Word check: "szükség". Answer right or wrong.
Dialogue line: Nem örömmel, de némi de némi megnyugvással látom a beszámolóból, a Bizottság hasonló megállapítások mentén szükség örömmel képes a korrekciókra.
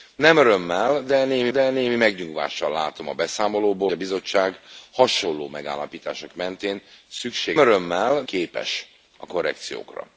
right